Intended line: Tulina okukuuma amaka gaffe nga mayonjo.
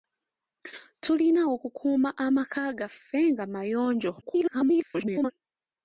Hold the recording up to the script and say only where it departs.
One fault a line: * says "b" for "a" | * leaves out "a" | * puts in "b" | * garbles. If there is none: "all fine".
* garbles